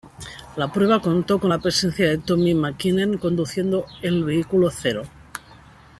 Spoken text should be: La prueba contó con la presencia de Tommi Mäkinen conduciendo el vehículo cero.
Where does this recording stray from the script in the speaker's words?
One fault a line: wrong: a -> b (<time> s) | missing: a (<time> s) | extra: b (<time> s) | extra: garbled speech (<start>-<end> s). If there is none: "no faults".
no faults